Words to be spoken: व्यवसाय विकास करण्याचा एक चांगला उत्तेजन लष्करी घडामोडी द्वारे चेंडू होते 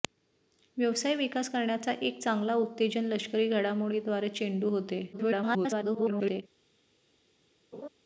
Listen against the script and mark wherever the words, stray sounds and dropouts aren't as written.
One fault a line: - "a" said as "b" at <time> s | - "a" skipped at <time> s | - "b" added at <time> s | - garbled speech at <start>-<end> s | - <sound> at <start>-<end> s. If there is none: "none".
- garbled speech at 5.1-6.4 s
- laugh at 7.7-7.9 s